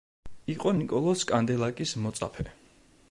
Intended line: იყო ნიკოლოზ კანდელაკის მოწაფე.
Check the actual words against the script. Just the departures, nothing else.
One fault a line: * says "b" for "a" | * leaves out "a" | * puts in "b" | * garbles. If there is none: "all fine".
all fine